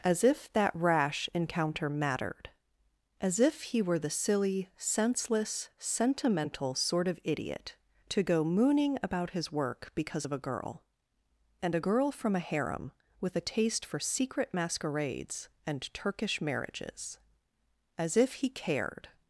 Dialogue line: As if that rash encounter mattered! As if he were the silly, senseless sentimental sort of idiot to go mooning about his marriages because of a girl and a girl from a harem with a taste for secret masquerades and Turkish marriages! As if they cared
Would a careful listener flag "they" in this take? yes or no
yes